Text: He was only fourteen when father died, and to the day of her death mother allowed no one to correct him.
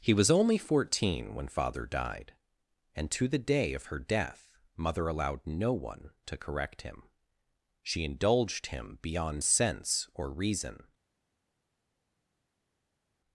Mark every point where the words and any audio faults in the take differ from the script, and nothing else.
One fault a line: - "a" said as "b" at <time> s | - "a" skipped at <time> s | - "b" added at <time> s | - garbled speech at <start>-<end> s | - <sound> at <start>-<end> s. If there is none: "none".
- "She indulged him beyond sense or reason" added at 7.8 s